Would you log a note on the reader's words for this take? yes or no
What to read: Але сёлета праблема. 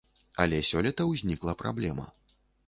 yes